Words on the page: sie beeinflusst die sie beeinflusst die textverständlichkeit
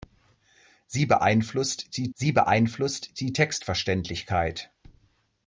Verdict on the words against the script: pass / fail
pass